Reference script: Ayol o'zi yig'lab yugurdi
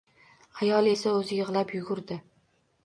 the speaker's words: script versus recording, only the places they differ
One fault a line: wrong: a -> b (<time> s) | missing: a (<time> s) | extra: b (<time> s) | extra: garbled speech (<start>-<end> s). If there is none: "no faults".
extra: esa (0.9 s)